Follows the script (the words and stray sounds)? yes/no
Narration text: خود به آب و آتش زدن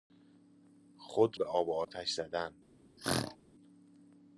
no